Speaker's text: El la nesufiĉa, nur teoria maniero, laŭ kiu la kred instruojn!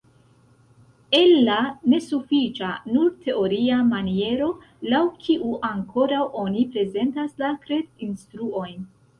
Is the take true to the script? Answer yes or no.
no